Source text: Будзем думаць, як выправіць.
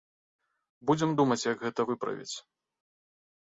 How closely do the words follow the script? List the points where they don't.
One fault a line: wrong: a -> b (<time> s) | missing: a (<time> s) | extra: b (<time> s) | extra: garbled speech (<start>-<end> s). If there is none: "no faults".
extra: гэта (1.7 s)